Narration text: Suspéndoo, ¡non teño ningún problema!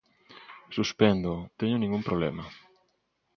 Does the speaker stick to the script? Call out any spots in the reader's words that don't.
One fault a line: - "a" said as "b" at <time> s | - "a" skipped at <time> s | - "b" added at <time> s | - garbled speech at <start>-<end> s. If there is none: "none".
- "non" skipped at 1.4 s